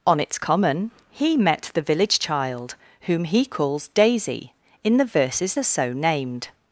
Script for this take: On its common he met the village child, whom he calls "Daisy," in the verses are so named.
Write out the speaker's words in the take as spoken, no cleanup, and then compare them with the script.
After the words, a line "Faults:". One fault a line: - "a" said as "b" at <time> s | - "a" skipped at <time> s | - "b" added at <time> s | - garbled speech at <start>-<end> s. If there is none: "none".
On its common he met the village child, whom he calls "Daisy," in the verses are so named.
Faults:
none